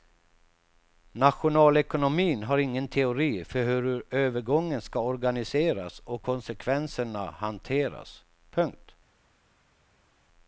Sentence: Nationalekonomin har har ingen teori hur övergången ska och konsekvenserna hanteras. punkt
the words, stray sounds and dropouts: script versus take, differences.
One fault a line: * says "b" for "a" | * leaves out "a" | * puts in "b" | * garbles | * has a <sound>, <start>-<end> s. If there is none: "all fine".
* leaves out "har"
* puts in "för"
* puts in "organiseras"